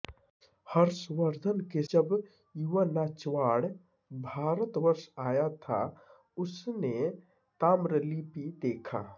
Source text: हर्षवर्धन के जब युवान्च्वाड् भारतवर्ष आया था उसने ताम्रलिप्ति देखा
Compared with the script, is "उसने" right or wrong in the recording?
right